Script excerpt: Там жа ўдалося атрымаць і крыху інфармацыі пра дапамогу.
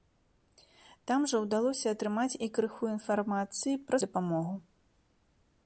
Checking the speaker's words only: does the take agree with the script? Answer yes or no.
yes